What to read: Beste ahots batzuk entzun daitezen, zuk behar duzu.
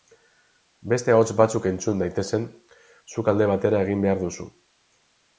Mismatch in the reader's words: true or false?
true